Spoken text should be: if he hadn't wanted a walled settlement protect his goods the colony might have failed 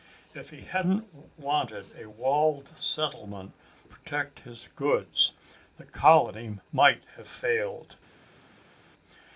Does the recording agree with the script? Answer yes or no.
yes